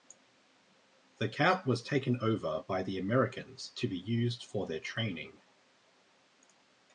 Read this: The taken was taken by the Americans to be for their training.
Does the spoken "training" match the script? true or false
true